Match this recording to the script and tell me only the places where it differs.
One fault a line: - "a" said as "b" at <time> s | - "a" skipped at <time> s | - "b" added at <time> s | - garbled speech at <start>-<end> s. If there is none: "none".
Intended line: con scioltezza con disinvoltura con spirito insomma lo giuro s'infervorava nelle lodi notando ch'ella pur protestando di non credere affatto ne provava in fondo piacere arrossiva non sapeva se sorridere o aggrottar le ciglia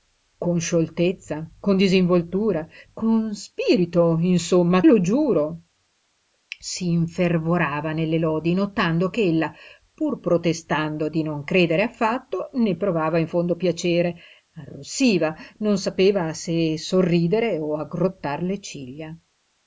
none